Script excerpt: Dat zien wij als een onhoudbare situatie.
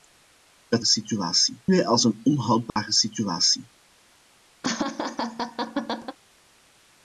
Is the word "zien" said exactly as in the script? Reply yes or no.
no